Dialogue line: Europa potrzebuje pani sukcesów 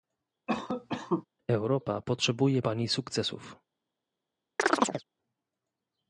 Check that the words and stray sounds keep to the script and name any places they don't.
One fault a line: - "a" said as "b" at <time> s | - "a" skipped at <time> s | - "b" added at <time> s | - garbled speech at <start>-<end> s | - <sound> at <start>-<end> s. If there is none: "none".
- cough at 0.5-1.2 s
- chirp at 4.6-5.0 s